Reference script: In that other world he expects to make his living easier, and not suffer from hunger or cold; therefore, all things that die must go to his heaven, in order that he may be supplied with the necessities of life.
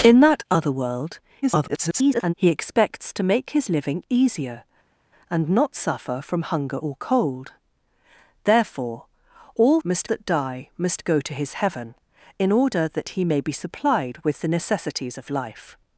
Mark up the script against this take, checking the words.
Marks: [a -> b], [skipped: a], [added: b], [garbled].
In that other world [garbled] he expects to make his living easier, and not suffer from hunger or cold; therefore, all [things -> must] that die must go to his heaven, in order that he may be supplied with the necessities of life.